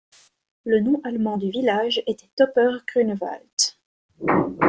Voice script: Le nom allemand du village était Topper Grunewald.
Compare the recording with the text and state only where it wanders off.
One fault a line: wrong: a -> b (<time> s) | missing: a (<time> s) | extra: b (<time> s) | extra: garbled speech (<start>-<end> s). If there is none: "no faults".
no faults